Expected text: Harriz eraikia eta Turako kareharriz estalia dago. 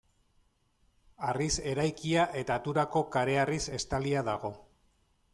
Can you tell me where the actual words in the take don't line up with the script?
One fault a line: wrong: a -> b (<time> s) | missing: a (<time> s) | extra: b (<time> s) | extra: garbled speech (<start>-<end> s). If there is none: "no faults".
no faults